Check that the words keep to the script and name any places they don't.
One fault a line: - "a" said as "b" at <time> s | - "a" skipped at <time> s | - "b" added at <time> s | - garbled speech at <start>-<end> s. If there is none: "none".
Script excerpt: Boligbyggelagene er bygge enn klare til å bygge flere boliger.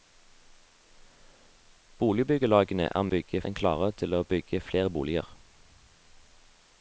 none